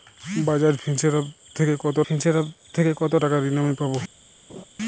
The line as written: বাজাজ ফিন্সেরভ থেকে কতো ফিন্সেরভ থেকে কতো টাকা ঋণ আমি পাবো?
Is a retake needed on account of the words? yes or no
no